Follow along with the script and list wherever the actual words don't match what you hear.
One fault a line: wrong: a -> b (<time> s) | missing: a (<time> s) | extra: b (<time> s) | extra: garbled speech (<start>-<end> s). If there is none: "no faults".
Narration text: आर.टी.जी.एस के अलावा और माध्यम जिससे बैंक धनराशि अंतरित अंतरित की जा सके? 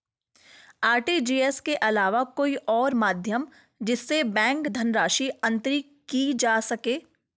extra: कोई (2.4 s)
missing: अंतरित (5.9 s)